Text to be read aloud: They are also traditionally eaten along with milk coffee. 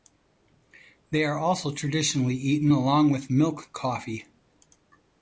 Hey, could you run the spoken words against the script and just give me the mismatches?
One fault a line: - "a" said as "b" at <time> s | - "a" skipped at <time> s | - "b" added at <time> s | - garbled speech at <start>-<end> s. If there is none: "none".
none